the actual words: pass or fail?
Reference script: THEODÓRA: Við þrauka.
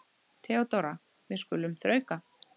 fail